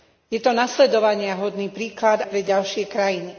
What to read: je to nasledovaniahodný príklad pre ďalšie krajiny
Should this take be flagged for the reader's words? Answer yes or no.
no